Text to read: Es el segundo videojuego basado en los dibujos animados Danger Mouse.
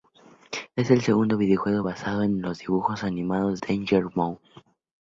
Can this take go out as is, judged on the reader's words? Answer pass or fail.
pass